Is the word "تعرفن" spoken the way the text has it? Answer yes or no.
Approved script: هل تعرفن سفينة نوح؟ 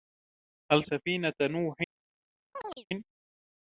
no